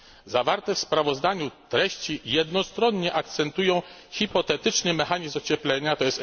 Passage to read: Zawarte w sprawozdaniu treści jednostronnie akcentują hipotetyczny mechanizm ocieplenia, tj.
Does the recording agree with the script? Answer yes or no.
yes